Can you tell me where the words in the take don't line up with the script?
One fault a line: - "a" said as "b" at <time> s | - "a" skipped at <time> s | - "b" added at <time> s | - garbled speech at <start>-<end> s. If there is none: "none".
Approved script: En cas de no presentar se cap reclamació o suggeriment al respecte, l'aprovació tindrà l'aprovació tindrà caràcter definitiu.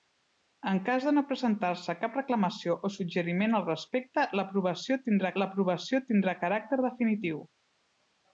none